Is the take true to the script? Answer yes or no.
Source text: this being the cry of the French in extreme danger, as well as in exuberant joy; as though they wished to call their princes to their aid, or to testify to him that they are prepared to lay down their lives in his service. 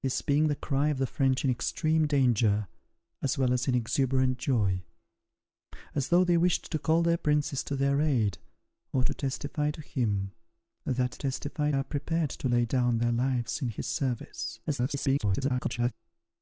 no